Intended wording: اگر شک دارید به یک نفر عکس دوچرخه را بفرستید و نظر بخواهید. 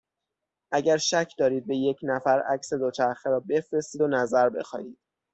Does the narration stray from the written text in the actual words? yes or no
no